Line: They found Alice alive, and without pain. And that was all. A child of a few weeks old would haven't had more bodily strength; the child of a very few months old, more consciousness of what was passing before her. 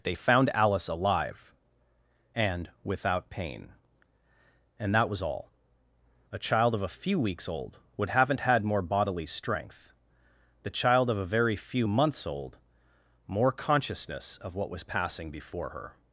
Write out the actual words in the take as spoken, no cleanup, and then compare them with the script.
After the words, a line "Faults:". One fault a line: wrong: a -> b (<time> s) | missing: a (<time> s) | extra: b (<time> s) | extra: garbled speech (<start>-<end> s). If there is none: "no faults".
They found Alice alive, and without pain. And that was all. A child of a few weeks old would haven't had more bodily strength; the child of a very few months old, more consciousness of what was passing before her.
Faults:
no faults